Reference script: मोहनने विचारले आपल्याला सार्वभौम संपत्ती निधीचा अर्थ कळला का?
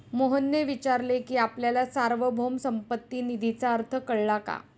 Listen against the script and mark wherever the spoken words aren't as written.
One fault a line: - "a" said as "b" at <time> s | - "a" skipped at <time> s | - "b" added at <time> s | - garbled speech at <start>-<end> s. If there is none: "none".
- "की" added at 1.2 s